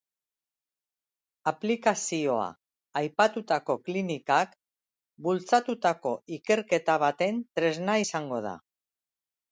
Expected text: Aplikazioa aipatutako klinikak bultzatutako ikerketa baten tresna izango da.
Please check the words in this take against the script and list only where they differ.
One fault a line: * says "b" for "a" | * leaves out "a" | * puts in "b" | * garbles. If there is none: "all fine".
all fine